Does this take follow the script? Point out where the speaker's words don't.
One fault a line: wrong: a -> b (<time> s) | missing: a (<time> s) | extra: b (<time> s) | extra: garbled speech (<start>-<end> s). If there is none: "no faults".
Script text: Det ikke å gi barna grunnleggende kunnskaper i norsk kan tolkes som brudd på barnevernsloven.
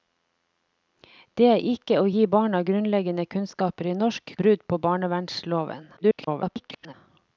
missing: kan tolkes som (4.3 s)
extra: garbled speech (6.0-6.9 s)